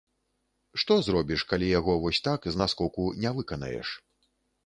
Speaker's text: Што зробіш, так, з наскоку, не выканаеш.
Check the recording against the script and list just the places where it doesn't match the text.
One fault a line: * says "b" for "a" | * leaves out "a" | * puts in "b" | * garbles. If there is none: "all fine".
* puts in "калі яго вось"